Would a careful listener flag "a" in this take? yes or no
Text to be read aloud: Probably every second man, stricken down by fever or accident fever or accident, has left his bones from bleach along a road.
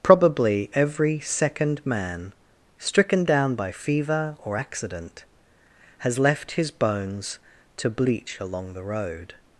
yes